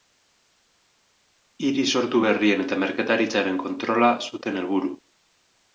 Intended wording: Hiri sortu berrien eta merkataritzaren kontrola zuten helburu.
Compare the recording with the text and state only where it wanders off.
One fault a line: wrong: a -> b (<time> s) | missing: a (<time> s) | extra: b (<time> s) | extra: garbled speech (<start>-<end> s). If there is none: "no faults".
no faults